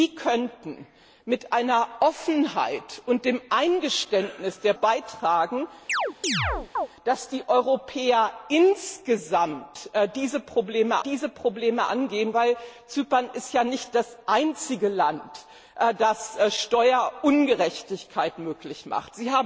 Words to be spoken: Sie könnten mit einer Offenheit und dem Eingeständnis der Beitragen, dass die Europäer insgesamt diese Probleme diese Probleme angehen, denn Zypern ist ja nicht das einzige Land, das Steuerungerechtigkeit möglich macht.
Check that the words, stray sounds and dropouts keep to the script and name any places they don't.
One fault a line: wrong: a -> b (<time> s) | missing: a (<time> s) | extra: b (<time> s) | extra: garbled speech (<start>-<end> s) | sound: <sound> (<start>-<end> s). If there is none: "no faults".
sound: chirp (5.9-6.9 s)